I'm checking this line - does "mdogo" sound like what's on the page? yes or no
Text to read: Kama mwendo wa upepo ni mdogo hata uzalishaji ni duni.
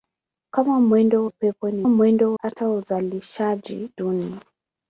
no